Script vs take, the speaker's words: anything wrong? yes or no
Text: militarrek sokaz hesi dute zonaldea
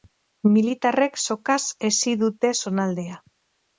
no